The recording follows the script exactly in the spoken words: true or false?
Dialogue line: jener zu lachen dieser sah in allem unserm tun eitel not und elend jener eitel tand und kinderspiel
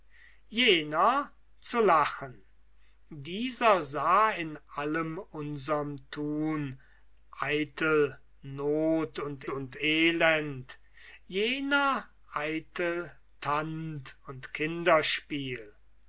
false